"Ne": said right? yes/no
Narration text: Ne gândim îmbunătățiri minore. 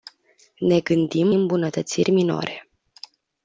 yes